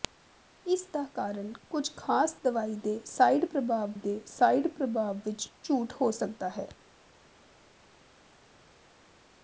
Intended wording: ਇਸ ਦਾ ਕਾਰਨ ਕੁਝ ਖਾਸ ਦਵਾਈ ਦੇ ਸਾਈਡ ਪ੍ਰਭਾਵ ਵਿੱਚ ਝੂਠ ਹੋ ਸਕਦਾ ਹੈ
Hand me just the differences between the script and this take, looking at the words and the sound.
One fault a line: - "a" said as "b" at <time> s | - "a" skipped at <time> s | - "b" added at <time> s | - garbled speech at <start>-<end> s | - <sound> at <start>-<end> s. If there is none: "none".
- "ਦੇ ਸਾਈਡ ਪ੍ਰਭਾਵ" added at 3.9 s